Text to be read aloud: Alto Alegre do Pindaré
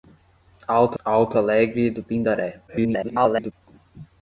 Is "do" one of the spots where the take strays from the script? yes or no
no